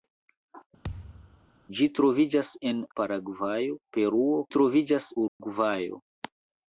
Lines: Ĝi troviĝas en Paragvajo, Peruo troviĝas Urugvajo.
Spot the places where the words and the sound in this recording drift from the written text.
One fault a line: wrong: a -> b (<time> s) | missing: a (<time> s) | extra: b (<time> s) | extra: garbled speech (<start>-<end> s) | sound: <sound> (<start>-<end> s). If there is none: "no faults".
sound: thud (0.8-1.5 s)
sound: dropout (5.3-5.4 s)